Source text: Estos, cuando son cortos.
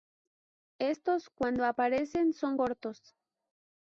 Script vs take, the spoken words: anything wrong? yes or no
yes